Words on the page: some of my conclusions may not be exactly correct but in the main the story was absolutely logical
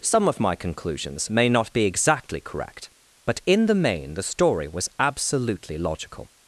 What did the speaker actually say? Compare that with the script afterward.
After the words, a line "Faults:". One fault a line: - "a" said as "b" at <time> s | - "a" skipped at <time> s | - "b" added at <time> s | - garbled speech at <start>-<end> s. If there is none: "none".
some of my conclusions may not be exactly correct but in the main the story was absolutely logical
Faults:
none